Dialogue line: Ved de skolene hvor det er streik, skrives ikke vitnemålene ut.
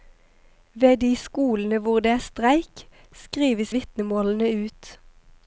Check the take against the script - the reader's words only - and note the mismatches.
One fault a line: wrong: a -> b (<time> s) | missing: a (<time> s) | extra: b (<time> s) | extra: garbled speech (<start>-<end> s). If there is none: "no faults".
missing: ikke (3.8 s)